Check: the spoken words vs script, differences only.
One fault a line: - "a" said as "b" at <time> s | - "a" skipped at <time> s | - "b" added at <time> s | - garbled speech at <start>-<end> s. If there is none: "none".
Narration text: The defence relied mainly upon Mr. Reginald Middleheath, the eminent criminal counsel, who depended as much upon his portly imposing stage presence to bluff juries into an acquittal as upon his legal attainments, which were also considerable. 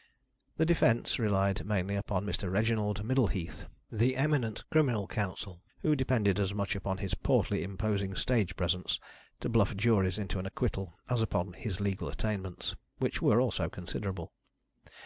none